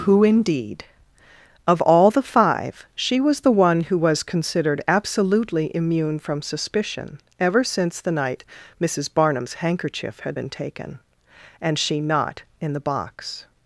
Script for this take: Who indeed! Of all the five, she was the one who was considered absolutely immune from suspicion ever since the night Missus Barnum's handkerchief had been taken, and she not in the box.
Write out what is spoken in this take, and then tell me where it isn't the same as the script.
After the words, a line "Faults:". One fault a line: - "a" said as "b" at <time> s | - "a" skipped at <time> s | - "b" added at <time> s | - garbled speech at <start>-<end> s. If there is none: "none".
Who indeed! Of all the five, she was the one who was considered absolutely immune from suspicion ever since the night Missus Barnum's handkerchief had been taken, and she not in the box.
Faults:
none